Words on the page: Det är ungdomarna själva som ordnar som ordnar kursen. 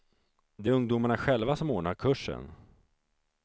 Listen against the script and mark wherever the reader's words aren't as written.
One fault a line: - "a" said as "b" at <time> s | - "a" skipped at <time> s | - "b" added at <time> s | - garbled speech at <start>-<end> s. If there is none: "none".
- "som ordnar" skipped at 1.9 s